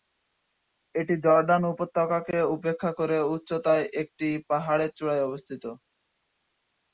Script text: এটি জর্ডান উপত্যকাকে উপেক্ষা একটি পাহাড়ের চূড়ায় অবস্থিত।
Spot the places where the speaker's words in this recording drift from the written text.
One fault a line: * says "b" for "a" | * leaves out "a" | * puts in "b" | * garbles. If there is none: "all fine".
* puts in "করে উচ্চতায়"